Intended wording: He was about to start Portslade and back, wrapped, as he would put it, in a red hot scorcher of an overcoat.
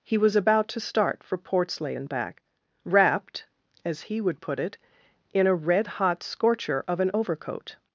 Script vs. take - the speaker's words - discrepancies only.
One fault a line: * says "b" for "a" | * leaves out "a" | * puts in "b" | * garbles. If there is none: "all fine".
* puts in "for"